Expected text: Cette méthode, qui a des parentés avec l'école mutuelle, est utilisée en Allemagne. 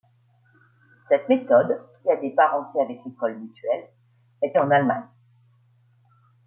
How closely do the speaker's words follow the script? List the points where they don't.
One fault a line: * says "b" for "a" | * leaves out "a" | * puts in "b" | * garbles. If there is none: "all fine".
* leaves out "utilisée"